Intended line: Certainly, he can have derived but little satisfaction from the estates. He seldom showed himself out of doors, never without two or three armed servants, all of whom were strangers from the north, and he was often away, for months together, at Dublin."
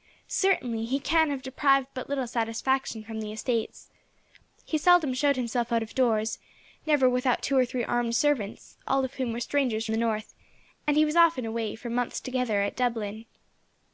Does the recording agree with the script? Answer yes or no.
no